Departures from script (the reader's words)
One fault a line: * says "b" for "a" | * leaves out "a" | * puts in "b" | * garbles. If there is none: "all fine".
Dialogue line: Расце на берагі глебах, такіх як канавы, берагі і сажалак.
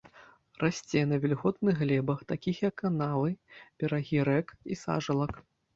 * says "вільготных" for "берагі"
* puts in "рэк"